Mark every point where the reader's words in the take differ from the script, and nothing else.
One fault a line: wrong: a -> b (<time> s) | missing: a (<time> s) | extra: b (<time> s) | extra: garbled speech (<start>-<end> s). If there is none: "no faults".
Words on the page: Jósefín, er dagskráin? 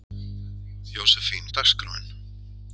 no faults